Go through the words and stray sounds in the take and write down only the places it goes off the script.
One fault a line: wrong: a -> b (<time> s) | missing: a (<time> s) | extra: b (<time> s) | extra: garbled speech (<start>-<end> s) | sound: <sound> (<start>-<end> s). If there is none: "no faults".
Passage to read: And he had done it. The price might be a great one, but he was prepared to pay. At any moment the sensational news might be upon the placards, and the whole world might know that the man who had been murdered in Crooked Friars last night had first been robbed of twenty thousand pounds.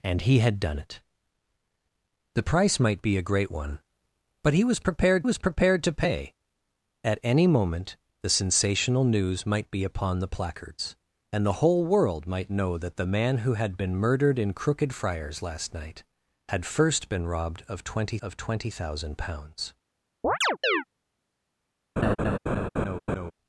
extra: was prepared (5.2 s)
extra: of twenty (18.2 s)
sound: chirp (20.2-20.8 s)
sound: laugh (22.0-23.3 s)